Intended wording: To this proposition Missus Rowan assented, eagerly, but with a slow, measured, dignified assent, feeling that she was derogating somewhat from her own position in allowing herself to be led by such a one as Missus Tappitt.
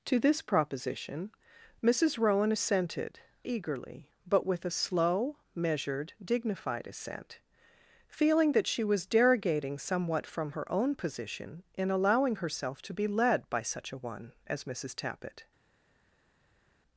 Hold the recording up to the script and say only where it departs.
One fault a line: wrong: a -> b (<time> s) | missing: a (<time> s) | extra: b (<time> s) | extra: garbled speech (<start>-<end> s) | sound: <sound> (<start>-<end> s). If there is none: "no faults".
no faults